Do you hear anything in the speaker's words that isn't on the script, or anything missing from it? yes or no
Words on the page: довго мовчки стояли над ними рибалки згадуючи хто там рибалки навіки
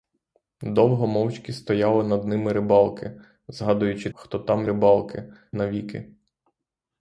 no